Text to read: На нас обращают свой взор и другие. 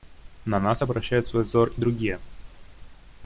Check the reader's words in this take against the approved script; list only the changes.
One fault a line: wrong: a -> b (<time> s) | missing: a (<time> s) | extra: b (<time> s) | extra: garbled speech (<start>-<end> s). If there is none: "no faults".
no faults